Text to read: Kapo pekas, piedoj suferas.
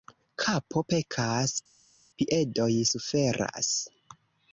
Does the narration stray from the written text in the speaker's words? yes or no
no